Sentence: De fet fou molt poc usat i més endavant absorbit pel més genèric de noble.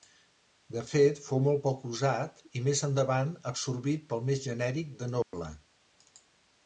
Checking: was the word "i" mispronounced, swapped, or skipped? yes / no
no